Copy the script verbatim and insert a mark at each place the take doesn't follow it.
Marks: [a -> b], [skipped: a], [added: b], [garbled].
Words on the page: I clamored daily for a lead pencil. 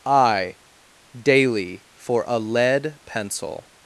I [skipped: clamored] daily for a lead pencil.